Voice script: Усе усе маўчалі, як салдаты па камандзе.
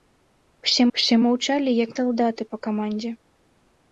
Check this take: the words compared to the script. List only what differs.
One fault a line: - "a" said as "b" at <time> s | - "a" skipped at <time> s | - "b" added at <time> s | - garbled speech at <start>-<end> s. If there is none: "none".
none